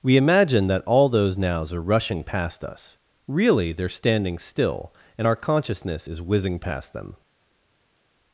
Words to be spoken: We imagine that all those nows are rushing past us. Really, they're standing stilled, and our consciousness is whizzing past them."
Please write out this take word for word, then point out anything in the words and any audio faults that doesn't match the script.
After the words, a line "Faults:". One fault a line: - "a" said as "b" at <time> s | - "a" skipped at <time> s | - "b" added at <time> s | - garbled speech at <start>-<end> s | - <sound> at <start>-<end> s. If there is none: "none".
We imagine that all those nows are rushing past us. Really, they're standing still, and our consciousness is whizzing past them."
Faults:
- "stilled" said as "still" at 4.4 s